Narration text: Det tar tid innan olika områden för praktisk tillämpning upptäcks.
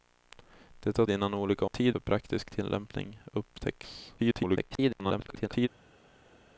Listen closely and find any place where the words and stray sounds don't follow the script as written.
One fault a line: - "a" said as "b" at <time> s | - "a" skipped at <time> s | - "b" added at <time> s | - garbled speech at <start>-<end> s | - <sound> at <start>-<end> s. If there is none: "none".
- "tid" skipped at 1.1 s
- "områden" said as "tid" at 1.6 s
- garbled speech at 4.2-5.7 s